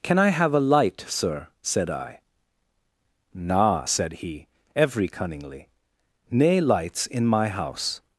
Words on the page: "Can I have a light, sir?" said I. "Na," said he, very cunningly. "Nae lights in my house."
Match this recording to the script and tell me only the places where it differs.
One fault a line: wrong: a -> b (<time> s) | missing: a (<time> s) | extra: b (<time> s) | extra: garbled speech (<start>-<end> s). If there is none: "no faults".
wrong: very -> every (4.8 s)